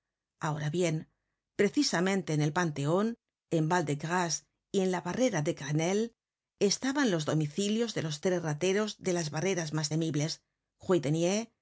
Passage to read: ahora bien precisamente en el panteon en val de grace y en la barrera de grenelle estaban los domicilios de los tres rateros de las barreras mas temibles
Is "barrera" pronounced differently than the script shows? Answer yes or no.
no